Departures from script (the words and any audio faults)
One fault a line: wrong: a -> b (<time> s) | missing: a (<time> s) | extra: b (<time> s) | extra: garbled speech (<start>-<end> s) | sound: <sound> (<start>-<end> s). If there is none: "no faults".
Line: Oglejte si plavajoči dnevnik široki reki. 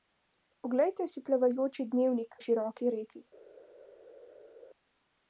no faults